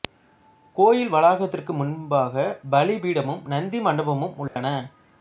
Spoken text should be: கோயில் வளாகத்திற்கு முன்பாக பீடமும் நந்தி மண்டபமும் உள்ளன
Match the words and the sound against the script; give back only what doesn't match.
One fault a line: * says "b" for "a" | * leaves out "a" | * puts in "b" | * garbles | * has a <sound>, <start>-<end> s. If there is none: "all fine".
* puts in "பலி"
* has a dropout, 4.5-4.6 s